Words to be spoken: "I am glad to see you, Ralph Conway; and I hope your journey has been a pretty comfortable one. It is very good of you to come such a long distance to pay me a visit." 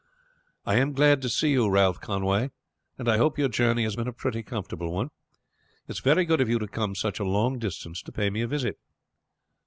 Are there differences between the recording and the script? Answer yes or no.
no